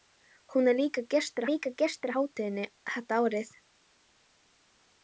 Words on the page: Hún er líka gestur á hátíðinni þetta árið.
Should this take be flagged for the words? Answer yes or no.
yes